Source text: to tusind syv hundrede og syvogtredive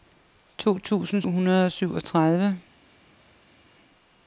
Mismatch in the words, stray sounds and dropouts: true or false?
true